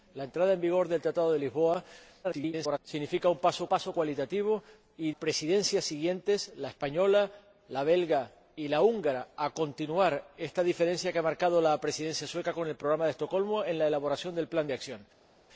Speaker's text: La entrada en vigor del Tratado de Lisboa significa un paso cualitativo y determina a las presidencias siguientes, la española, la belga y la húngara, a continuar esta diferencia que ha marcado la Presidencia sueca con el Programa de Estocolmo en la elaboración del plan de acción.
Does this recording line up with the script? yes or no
no